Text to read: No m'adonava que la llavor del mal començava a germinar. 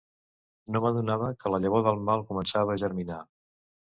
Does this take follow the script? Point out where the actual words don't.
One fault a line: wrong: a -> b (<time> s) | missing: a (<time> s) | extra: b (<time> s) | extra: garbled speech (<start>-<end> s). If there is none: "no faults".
no faults